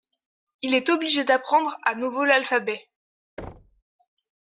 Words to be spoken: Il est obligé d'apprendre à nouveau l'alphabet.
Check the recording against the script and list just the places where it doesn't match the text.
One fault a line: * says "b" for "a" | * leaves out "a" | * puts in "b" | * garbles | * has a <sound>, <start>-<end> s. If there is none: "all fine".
* has a thud, 3.4-3.8 s